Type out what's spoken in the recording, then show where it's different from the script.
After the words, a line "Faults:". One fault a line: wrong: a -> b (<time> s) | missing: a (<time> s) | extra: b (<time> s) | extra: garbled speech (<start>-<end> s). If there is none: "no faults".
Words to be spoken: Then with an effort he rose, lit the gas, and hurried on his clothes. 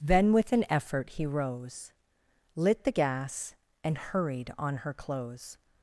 Then with an effort he rose, lit the gas, and hurried on her clothes.
Faults:
wrong: his -> her (4.8 s)